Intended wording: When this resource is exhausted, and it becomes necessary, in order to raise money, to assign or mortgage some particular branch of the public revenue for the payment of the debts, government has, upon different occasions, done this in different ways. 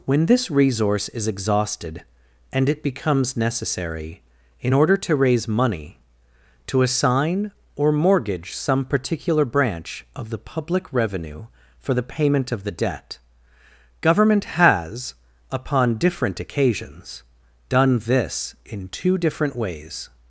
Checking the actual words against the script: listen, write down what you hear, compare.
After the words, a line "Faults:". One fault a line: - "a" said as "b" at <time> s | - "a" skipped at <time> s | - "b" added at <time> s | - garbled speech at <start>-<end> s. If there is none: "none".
When this resource is exhausted, and it becomes necessary, in order to raise money, to assign or mortgage some particular branch of the public revenue for the payment of the debt, government has, upon different occasions, done this in two different ways.
Faults:
- "debts" said as "debt" at 12.7 s
- "two" added at 18.9 s